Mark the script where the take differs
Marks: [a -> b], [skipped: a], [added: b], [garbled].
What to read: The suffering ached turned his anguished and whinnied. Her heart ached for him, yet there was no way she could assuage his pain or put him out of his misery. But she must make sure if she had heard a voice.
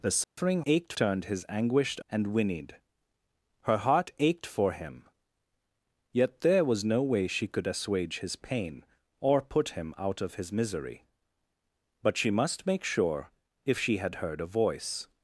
The suffering ached turned his anguished and whinnied. Her heart ached for him, yet there was no way she could assuage his pain or put him out of his misery. But she must make sure if she had heard a voice.